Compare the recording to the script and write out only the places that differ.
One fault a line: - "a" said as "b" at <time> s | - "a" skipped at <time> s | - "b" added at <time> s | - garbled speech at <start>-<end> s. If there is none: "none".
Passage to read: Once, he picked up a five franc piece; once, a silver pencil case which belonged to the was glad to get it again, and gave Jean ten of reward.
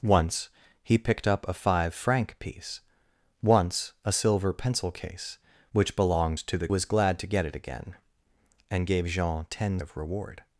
none